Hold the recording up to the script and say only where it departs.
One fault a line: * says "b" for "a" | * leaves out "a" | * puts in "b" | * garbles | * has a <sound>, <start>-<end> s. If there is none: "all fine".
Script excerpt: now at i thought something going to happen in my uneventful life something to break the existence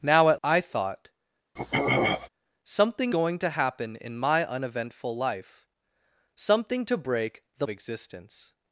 * has a throat clearing, 1.6-2.3 s